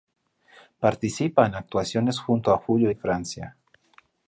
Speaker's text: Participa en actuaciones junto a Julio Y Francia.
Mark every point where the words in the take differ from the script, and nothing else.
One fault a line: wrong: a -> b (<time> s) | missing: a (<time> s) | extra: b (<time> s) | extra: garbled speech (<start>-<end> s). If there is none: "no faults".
no faults